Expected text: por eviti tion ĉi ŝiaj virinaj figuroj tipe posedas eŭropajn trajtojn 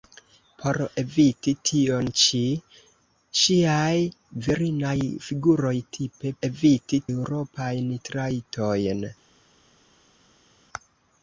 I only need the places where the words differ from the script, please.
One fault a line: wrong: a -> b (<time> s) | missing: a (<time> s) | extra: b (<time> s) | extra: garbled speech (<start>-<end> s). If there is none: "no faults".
wrong: posedas -> eviti (6.5 s)